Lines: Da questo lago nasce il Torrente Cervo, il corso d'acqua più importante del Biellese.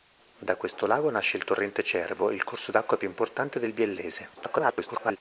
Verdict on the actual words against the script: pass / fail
fail